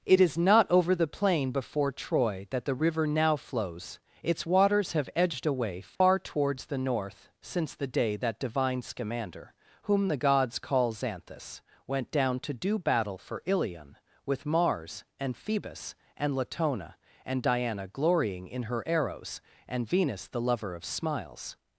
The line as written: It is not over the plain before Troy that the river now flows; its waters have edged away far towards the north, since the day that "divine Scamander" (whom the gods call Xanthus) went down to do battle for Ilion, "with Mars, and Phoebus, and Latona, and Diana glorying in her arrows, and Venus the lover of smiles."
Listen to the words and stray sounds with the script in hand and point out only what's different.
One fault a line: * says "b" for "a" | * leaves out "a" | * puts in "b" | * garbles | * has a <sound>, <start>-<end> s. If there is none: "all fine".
* has a dropout, 6.0-6.0 s